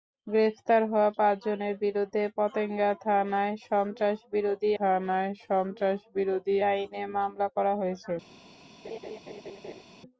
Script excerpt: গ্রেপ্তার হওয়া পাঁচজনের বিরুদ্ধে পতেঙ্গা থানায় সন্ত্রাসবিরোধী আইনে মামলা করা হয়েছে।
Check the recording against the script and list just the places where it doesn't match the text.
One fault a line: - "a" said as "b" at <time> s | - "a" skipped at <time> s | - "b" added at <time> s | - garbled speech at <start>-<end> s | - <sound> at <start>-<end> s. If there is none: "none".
- "থানায় সন্ত্রাসবিরোধী" added at 4.8 s
- laugh at 8.8-9.8 s